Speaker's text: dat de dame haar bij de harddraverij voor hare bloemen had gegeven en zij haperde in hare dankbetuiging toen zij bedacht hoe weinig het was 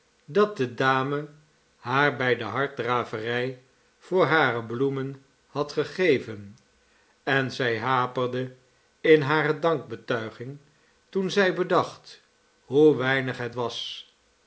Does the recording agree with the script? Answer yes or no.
yes